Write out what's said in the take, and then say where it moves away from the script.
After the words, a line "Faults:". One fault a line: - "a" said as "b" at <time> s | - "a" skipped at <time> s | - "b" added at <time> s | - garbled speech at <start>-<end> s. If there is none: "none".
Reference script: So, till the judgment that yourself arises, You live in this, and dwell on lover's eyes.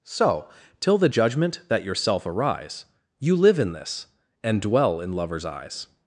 So, till the judgment that yourself arise, You live in this, and dwell in lover's eyes.
Faults:
- "arises" said as "arise" at 2.3 s
- "on" said as "in" at 5.0 s